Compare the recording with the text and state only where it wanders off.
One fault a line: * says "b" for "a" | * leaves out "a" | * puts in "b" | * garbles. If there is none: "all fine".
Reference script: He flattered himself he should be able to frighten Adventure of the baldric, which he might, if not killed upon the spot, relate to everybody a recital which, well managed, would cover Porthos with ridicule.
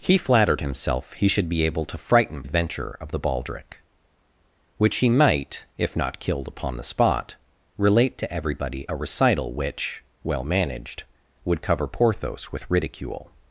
all fine